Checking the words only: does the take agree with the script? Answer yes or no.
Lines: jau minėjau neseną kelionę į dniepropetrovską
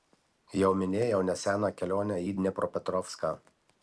yes